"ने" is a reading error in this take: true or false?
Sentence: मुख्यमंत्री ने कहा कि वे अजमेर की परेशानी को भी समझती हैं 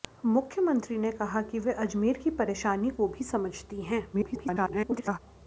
false